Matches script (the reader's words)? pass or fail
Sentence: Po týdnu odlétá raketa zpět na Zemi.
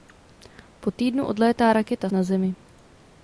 fail